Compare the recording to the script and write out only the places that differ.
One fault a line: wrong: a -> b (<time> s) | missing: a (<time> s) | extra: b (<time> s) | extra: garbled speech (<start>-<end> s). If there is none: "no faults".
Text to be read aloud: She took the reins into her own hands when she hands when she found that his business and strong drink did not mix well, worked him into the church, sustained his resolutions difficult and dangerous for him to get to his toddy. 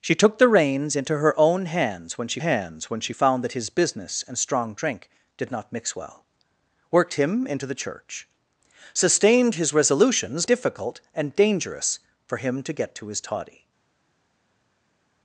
no faults